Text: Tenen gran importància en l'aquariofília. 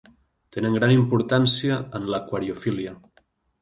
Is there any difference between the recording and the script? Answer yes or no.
no